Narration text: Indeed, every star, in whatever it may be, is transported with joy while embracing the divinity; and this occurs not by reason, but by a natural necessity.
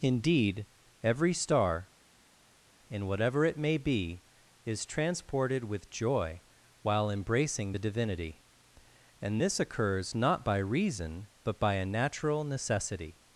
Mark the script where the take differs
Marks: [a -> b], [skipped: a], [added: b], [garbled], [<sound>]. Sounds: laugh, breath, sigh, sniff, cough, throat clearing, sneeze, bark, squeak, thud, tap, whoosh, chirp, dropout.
Indeed, every star, in whatever it may be, is transported with joy while embracing the divinity; and this occurs not by reason, but by a natural necessity.